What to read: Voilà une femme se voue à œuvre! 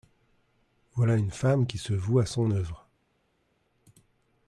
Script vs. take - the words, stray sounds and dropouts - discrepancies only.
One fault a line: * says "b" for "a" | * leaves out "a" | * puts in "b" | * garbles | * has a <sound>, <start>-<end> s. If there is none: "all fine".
* puts in "qui"
* puts in "son"